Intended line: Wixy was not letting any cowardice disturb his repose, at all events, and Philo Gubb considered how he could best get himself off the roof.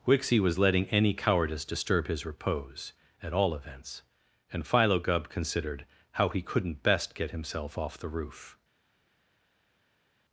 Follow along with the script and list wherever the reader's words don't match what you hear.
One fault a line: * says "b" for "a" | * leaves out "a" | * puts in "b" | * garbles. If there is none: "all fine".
* leaves out "not"
* says "couldn't" for "could"